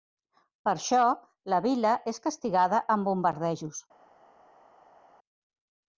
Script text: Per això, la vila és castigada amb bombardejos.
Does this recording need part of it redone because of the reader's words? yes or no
no